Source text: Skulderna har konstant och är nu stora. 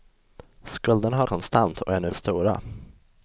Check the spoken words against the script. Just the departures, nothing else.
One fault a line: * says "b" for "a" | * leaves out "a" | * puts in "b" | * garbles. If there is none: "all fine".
all fine